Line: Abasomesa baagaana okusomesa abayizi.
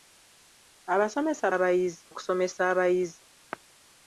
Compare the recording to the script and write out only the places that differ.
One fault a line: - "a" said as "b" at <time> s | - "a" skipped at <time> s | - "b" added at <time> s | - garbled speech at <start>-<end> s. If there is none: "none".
- "baagaana" said as "abayizi" at 1.5 s